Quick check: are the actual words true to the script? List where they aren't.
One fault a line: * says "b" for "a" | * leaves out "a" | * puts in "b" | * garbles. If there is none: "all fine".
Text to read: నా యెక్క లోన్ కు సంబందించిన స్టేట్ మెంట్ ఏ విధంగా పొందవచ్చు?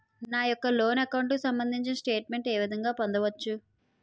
* puts in "అకౌంట్"